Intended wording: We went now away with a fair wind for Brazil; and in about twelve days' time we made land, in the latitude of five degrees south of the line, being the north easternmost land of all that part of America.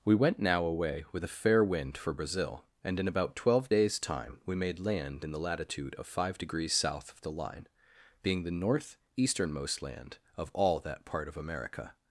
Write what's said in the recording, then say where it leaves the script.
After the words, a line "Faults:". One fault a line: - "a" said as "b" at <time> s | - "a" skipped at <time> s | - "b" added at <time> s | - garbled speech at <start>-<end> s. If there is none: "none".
We went now away with a fair wind for Brazil; and in about twelve days' time we made land, in the latitude of five degrees south of the line, being the north easternmost land of all that part of America.
Faults:
none